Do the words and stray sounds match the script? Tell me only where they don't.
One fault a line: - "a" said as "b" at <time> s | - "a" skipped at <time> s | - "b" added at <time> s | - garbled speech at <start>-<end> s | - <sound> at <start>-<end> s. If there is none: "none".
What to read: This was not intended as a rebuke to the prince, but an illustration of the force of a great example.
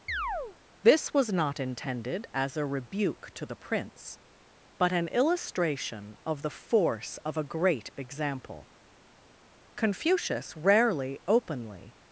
- chirp at 0.1-0.6 s
- "Confucius rarely openly" added at 9.8 s